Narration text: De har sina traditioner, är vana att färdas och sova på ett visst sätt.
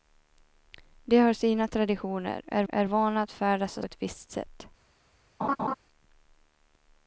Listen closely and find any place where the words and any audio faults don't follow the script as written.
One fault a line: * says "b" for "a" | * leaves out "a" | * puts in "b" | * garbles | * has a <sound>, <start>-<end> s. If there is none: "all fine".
* puts in "är"
* leaves out "sova på"
* has a laugh, 5.4-5.8 s